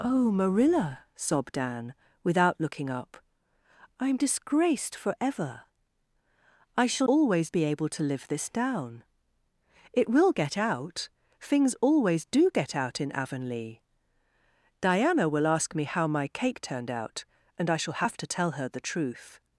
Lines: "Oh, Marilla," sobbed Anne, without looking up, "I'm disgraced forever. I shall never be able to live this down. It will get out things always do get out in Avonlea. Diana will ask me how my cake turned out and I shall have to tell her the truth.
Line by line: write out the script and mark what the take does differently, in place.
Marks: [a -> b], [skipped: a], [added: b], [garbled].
"Oh, Marilla," sobbed Anne, without looking up, "I'm disgraced forever. I shall [never -> always] be able to live this down. It will get out things always do get out in Avonlea. Diana will ask me how my cake turned out and I shall have to tell her the truth.